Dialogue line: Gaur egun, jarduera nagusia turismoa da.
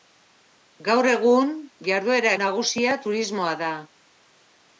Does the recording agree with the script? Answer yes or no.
yes